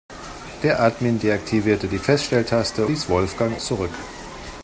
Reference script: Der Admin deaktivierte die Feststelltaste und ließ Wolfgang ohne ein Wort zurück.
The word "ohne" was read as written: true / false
false